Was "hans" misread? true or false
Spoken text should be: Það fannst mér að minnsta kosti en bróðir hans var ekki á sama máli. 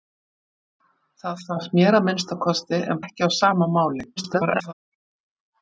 true